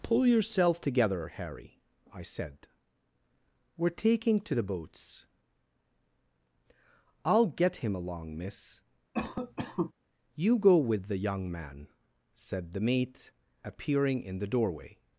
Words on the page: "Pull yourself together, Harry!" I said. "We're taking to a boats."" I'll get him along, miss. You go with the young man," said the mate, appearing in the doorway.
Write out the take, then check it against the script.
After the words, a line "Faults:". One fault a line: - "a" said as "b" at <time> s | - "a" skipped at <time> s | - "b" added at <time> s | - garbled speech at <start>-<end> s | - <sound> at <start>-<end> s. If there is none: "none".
"Pull yourself together, Harry!" I said. "We're taking to the boats."" I'll get him along, miss. You go with the young man," said the mate, appearing in the doorway.
Faults:
- "a" said as "the" at 4.5 s
- cough at 9.1-9.9 s